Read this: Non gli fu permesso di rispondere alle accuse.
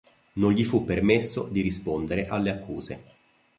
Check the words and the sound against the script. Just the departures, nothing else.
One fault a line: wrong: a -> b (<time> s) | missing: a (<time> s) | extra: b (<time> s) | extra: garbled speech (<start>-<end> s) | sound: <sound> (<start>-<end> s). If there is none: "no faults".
no faults